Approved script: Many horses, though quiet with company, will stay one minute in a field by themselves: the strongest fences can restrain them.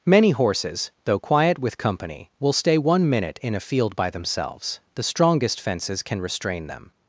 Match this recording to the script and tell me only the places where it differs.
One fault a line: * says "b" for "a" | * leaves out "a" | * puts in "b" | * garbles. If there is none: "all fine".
all fine